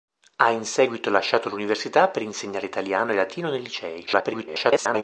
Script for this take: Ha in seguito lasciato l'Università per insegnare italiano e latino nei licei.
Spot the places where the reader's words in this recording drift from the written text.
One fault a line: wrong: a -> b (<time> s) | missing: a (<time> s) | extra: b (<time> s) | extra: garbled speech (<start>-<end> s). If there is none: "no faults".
extra: garbled speech (4.1-5.0 s)